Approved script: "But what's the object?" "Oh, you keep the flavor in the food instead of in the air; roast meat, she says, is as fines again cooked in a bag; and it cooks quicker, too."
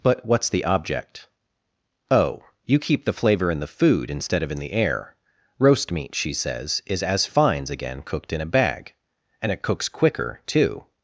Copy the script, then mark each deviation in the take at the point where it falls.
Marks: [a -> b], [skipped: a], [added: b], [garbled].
"But what's the object?" "Oh, you keep the flavor in the food instead of in the air; roast meat, she says, is as fines again cooked in a bag; and it cooks quicker, too."